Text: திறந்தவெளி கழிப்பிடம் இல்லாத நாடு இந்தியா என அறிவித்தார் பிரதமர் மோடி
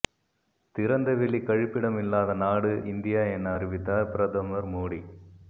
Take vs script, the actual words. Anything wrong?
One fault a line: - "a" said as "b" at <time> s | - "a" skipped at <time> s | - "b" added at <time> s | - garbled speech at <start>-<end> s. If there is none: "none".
none